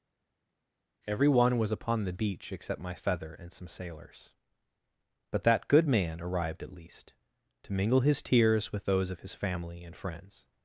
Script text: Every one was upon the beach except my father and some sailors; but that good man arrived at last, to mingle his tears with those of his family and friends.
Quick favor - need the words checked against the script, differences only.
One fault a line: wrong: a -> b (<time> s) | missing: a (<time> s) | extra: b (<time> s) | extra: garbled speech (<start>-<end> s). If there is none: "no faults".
wrong: father -> feather (2.9 s)
wrong: last -> least (6.7 s)